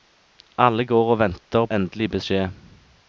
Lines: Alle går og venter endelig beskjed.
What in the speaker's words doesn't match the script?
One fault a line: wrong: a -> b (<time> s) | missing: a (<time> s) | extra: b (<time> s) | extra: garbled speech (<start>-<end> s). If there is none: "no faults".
no faults